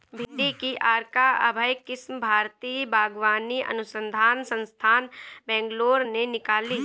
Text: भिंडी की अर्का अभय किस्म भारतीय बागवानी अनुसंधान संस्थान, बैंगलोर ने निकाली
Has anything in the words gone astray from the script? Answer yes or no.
no